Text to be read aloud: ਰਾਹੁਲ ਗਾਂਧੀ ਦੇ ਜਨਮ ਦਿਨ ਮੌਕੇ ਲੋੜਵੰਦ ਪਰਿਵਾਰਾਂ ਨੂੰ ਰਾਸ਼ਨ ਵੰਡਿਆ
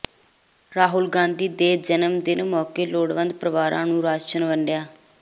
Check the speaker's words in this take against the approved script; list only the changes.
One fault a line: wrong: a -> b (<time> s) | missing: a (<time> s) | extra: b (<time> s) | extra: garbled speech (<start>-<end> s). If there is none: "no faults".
no faults